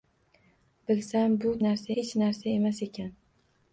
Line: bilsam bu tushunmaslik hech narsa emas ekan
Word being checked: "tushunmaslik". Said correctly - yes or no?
no